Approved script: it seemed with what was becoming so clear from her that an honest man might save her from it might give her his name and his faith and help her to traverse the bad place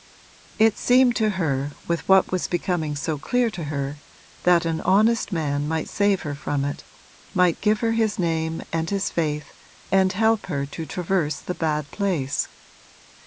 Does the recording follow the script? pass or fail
fail